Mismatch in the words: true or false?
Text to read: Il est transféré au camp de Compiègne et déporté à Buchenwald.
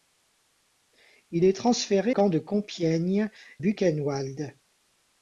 true